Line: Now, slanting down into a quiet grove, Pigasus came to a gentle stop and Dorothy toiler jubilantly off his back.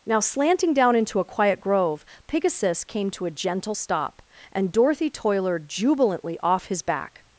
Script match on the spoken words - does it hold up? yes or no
yes